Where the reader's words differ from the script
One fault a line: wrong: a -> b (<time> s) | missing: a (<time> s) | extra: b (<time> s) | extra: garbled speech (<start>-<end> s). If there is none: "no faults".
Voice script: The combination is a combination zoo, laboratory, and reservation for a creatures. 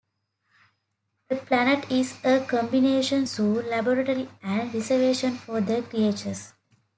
wrong: combination -> planet (1.4 s)
wrong: a -> the (5.6 s)